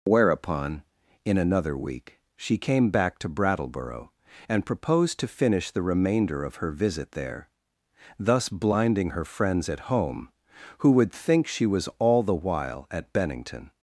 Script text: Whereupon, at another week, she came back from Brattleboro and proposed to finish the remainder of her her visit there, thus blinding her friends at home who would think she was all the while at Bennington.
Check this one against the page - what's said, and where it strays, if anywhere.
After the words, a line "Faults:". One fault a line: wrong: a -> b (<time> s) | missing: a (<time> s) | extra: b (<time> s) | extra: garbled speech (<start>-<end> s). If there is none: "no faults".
Whereupon, in another week, she came back to Brattleboro and proposed to finish the remainder of her visit there, thus blinding her friends at home who would think she was all the while at Bennington.
Faults:
wrong: at -> in (1.2 s)
wrong: from -> to (3.2 s)
missing: her (6.7 s)